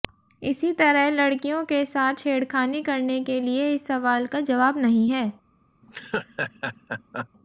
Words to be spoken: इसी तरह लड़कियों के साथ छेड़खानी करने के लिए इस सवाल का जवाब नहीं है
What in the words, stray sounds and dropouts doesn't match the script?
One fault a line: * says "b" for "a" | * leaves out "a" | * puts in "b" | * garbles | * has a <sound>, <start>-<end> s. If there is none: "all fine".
* has a laugh, 5.8-7.3 s